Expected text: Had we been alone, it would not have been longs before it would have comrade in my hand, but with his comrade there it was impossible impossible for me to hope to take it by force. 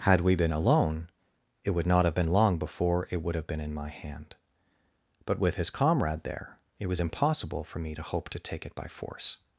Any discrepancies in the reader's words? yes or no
yes